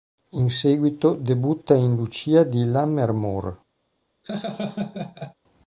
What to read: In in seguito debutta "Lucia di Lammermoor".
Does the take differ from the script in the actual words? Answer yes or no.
yes